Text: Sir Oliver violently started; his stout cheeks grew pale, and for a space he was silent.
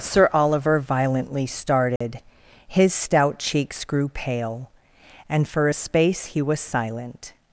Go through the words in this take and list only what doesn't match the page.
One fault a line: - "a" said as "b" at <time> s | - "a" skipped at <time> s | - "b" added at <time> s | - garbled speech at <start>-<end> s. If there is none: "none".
none